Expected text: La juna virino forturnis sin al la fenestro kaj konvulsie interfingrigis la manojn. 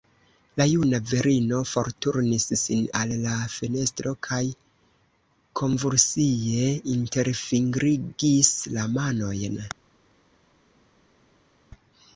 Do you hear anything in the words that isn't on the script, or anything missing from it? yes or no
no